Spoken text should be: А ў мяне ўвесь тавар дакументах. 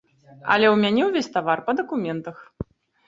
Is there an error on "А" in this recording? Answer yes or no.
yes